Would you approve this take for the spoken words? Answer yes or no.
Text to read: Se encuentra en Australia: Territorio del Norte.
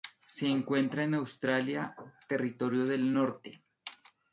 yes